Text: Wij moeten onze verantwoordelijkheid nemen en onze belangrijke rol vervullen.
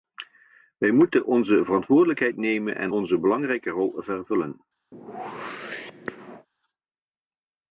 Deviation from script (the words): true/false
false